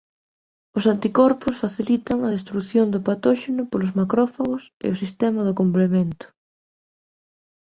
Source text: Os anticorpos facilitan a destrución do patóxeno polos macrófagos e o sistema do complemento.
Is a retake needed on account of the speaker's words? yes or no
no